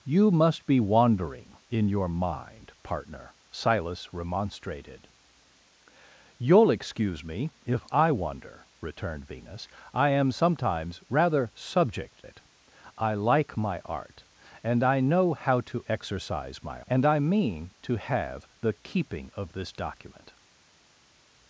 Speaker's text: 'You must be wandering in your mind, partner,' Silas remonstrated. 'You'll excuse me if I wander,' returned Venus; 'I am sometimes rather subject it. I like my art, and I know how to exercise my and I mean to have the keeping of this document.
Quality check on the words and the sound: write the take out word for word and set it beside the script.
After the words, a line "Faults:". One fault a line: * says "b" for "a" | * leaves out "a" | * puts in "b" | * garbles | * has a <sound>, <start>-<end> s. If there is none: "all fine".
'You must be wandering in your mind, partner,' Silas remonstrated. 'You'll excuse me if I wander,' returned Venus; 'I am sometimes rather subject it. I like my art, and I know how to exercise my and I mean to have the keeping of this document.
Faults:
all fine